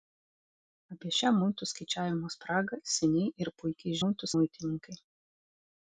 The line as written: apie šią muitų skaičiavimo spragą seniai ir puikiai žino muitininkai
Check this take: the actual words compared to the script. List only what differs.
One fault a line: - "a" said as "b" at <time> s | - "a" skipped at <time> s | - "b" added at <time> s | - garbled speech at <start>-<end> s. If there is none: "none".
- "žino" said as "muitų" at 4.0 s